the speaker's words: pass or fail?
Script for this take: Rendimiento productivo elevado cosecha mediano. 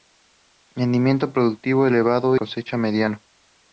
pass